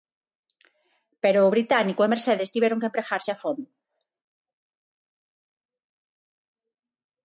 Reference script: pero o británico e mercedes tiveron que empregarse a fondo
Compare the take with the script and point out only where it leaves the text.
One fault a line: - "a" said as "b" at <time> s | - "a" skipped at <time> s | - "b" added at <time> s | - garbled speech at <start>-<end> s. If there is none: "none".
none